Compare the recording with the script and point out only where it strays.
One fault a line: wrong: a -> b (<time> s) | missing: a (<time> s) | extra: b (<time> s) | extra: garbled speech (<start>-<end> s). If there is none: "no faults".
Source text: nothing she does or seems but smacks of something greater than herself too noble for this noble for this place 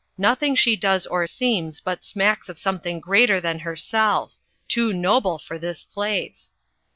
missing: noble for this (5.8 s)